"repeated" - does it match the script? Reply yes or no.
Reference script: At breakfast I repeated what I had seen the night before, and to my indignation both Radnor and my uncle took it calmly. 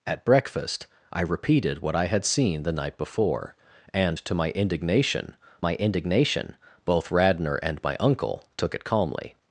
yes